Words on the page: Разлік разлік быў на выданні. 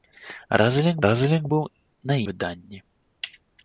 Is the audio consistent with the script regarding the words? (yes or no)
yes